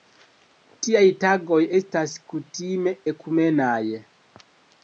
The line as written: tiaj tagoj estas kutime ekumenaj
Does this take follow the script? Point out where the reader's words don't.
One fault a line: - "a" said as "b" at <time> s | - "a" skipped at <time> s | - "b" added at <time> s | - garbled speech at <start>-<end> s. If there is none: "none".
none